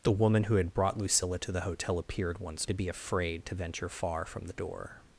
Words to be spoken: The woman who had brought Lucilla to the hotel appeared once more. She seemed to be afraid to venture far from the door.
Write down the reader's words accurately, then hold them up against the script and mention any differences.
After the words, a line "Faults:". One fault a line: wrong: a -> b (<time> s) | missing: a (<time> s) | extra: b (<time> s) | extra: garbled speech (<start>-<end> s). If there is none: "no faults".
The woman who had brought Lucilla to the hotel appeared once to be afraid to venture far from the door.
Faults:
missing: more She seemed (2.7 s)